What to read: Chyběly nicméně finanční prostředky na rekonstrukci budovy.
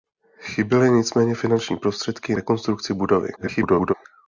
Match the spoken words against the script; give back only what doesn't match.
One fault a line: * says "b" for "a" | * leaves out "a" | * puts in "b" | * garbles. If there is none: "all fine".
* leaves out "na"
* garbles